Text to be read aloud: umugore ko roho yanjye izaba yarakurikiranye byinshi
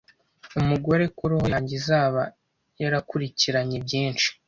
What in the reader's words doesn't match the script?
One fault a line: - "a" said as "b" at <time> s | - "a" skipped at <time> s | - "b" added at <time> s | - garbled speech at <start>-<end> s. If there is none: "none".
none